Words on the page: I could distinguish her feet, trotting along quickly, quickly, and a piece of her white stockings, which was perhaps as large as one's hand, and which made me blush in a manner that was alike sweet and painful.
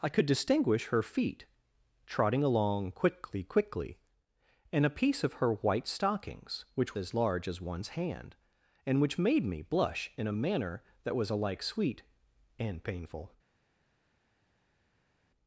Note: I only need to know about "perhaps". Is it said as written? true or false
false